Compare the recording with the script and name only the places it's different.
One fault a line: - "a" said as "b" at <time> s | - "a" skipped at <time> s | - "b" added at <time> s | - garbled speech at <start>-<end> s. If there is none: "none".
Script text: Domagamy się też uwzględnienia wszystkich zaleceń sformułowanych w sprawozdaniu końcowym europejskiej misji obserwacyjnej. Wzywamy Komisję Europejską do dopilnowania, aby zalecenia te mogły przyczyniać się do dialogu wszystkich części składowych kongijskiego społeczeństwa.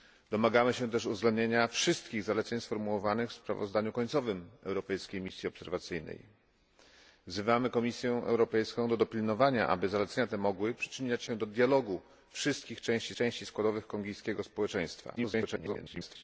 - "części" added at 13.1 s
- garbled speech at 15.2-16.2 s